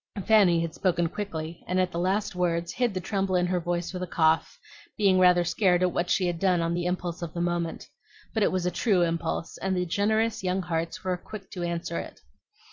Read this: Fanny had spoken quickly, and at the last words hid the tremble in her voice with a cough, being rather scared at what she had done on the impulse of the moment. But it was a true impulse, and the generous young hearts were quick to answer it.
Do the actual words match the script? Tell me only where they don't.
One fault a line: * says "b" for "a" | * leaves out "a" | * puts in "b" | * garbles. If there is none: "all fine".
all fine